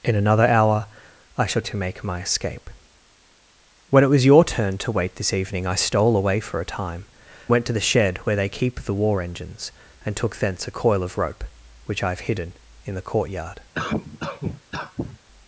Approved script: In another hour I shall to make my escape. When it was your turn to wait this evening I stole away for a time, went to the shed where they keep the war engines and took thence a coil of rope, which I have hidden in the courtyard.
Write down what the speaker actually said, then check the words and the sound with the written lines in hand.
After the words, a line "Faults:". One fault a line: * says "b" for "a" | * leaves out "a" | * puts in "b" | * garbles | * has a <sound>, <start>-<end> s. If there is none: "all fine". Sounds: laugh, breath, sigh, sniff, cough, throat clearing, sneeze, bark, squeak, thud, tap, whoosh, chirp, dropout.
In another hour I shall to make my escape. When it was your turn to wait this evening I stole away for a time, went to the shed where they keep the war engines and took thence a coil of rope, which I have hidden in the courtyard.
Faults:
* has a cough, 13.7-15.2 s